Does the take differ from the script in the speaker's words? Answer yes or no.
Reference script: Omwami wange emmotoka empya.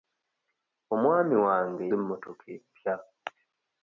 no